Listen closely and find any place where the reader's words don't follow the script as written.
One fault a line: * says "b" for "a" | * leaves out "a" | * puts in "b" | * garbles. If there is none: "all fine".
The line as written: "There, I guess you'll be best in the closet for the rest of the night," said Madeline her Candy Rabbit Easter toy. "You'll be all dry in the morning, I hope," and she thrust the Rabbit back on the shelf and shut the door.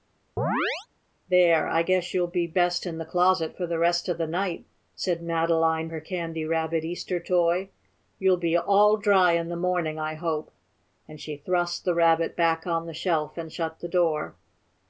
all fine